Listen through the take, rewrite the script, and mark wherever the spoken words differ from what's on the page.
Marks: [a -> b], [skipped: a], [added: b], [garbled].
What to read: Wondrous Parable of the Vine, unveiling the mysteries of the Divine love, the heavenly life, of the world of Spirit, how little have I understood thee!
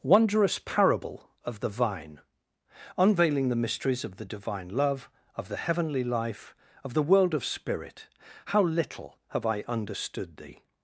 Wondrous Parable of the Vine, unveiling the mysteries of the Divine love, [added: of] the heavenly life, of the world of Spirit, how little have I understood thee!